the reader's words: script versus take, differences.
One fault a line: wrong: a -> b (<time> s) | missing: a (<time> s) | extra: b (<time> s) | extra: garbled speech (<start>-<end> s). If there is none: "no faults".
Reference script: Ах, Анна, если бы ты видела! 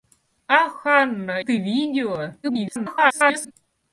missing: если бы (1.4 s)
extra: garbled speech (2.4-3.5 s)